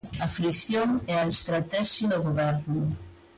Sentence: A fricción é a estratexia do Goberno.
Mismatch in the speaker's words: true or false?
false